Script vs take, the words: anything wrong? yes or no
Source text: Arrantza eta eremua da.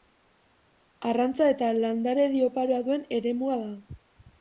yes